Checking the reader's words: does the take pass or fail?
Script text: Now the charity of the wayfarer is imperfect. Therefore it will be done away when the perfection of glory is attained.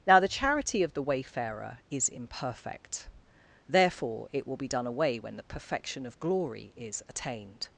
pass